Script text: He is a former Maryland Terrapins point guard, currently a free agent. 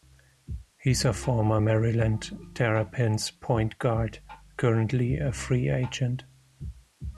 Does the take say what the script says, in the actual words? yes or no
yes